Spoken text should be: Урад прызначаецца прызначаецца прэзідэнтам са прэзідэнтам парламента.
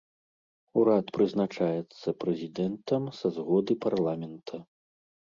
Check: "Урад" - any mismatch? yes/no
no